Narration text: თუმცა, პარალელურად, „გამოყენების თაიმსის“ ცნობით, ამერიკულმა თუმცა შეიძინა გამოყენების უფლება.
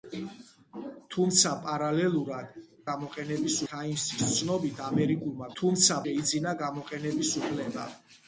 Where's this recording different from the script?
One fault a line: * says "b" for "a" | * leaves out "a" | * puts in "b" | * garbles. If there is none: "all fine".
all fine